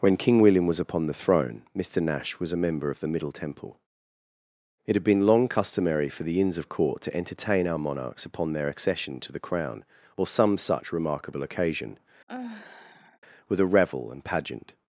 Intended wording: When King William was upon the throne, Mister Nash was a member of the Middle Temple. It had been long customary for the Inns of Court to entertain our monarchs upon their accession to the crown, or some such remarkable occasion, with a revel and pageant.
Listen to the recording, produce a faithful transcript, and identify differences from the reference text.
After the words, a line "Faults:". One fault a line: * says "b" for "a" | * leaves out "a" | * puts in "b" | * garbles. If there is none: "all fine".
When King William was upon the throne, Mister Nash was a member of the Middle Temple. It had been long customary for the Inns of Court to entertain our monarchs upon their accession to the crown, or some such remarkable occasion, with a revel and pageant.
Faults:
all fine